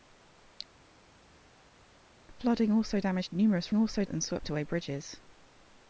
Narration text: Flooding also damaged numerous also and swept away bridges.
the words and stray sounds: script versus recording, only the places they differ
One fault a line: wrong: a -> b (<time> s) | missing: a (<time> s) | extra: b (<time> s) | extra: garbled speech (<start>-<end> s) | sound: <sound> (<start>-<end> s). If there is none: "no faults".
no faults